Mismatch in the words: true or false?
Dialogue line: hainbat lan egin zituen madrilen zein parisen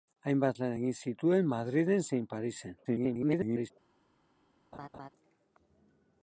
true